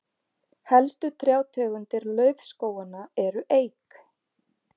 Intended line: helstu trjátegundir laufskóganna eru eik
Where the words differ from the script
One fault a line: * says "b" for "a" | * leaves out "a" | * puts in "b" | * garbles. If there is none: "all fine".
all fine